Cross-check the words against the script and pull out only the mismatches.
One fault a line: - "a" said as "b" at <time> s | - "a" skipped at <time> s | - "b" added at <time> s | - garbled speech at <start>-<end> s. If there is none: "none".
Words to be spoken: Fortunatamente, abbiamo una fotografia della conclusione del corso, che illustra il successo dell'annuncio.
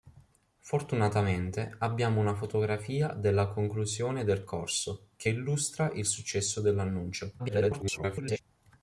- garbled speech at 7.4-8.4 s